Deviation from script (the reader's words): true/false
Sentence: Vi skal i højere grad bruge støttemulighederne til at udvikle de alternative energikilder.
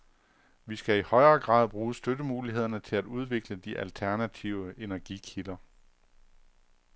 false